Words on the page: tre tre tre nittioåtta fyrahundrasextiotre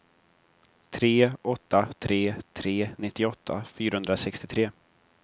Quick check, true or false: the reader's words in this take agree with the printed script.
false